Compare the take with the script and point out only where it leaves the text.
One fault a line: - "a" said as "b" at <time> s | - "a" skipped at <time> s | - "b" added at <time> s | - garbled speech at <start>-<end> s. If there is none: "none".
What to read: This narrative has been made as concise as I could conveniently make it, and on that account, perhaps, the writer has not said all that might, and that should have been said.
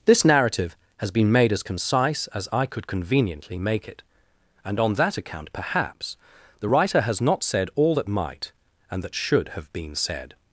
none